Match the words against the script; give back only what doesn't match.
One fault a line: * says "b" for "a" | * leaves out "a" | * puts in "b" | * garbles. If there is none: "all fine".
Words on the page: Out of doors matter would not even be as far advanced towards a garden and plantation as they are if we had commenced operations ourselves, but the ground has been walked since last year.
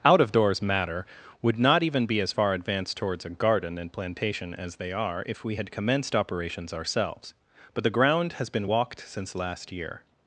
all fine